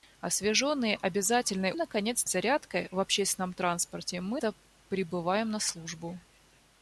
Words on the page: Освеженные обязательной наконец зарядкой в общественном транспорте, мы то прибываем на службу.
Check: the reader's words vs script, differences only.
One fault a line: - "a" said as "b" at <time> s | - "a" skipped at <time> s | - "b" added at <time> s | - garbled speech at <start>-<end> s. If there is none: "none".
none